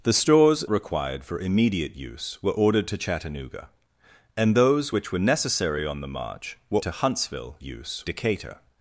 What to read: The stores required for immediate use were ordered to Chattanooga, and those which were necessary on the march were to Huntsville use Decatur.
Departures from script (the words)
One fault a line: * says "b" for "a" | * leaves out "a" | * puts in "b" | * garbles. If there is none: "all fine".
all fine